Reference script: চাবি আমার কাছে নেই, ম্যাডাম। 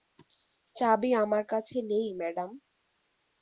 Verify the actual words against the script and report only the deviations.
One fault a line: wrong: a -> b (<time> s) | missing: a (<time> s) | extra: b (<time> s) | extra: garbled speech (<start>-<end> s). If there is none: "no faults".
no faults